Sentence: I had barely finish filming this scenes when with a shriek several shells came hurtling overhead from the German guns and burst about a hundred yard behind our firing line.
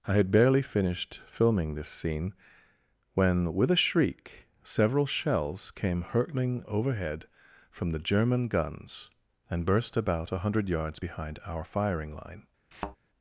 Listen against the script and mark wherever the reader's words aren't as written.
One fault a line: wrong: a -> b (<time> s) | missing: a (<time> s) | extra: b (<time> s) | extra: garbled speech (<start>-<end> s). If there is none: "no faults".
wrong: finish -> finished (0.6 s)
wrong: scenes -> scene (1.9 s)
wrong: yard -> yards (10.7 s)